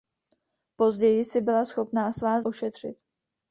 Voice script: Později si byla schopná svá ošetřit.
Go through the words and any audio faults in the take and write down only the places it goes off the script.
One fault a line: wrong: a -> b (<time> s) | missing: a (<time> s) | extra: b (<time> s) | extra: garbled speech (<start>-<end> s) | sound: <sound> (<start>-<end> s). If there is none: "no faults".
no faults